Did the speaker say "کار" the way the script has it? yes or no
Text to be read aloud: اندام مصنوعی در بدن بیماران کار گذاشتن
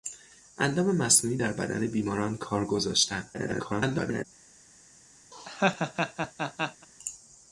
yes